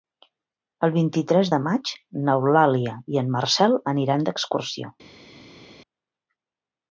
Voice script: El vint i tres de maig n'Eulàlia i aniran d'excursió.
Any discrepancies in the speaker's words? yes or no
yes